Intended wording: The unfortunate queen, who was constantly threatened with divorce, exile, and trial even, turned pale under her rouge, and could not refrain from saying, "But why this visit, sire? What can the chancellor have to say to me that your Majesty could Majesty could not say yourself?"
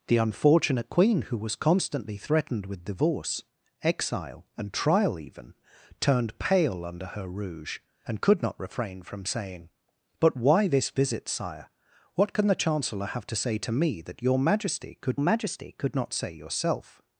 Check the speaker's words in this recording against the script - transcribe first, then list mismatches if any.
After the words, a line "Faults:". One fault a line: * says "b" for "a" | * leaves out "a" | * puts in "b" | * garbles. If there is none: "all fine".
The unfortunate queen, who was constantly threatened with divorce, exile, and trial even, turned pale under her rouge, and could not refrain from saying, "But why this visit, sire? What can the chancellor have to say to me that your Majesty could Majesty could not say yourself?"
Faults:
all fine